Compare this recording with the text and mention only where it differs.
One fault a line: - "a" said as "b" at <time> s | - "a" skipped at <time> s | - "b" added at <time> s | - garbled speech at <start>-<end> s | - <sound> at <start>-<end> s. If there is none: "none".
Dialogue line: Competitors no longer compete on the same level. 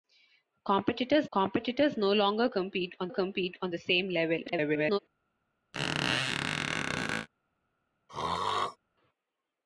- "competitors" added at 1.3 s
- "compete on" added at 3.1 s
- garbled speech at 4.5-5.0 s
- squeak at 5.7-7.3 s
- throat clearing at 8.1-8.8 s